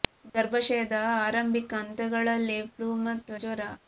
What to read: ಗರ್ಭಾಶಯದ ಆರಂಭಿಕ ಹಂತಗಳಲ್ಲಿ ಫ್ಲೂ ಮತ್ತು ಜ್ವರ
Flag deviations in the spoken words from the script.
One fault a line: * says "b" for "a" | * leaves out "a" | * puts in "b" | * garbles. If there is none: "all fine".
all fine